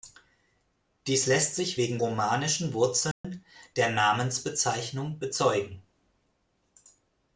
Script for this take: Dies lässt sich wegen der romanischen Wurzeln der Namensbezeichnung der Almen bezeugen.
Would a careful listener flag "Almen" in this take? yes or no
yes